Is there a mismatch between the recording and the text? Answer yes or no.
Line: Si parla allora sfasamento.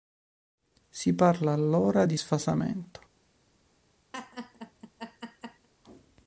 yes